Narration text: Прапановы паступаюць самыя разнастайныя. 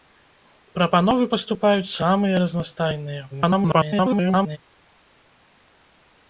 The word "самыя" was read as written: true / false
true